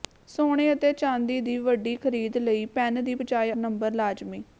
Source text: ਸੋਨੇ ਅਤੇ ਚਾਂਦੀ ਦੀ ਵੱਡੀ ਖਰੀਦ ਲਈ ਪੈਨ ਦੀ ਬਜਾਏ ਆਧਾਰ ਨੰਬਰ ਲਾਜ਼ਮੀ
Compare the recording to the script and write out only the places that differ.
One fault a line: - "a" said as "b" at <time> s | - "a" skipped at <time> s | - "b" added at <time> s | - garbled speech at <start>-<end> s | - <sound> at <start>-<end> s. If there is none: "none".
- "ਆਧਾਰ" skipped at 3.5 s